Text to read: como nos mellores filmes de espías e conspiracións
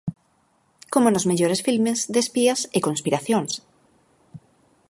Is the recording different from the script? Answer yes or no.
no